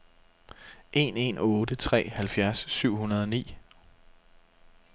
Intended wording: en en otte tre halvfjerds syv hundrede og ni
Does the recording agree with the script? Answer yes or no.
yes